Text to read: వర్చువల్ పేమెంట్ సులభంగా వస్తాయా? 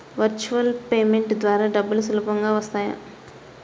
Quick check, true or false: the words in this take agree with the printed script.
false